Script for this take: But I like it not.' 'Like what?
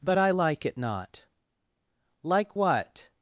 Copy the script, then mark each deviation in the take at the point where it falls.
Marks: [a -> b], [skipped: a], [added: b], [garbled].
But I like it not.' 'Like what?